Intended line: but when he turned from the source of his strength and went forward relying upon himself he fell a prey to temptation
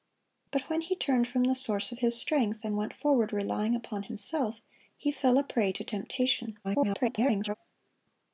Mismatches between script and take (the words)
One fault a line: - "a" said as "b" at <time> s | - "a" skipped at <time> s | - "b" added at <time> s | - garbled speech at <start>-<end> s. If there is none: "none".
- garbled speech at 6.6-7.5 s